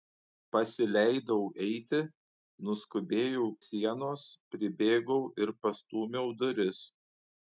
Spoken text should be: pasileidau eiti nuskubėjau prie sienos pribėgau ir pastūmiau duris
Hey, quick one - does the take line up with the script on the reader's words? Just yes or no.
no